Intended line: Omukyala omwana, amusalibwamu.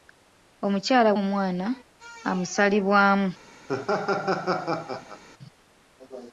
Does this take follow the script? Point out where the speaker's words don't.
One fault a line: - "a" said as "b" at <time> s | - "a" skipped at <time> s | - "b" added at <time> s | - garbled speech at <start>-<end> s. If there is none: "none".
none